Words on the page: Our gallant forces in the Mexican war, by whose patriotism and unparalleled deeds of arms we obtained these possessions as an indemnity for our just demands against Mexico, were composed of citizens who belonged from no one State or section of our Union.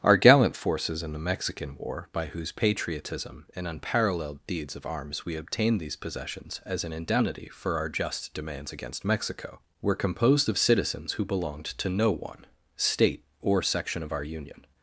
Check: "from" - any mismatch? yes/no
yes